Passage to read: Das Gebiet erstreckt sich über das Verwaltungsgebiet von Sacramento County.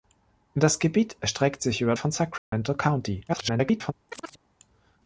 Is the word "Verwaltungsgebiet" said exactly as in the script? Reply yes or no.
no